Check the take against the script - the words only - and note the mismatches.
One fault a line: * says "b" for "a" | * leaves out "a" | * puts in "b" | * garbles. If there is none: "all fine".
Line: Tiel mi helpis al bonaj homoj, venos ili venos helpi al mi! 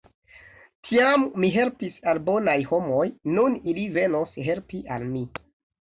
* says "Tiam" for "Tiel"
* says "nun" for "venos"